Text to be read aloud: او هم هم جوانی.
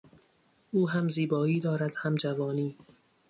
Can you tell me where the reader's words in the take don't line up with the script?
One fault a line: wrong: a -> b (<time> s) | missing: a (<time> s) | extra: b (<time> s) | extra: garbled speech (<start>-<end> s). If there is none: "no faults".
extra: زیبایی دارد (1.1 s)